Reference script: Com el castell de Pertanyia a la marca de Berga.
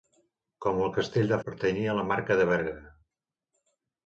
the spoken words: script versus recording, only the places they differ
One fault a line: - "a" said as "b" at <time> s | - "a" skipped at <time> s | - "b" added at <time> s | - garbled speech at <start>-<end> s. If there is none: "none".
none